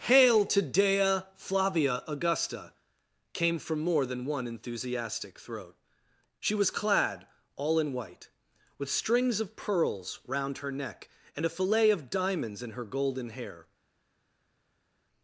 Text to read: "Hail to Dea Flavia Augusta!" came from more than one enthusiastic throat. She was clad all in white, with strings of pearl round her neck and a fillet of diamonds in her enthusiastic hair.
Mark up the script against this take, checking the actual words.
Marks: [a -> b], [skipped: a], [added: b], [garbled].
"Hail to Dea Flavia Augusta!" came from more than one enthusiastic throat. She was clad all in white, with strings of [pearl -> pearls] round her neck and a fillet of diamonds in her [enthusiastic -> golden] hair.